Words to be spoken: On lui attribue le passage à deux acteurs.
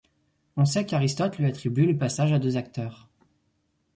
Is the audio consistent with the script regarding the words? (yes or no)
no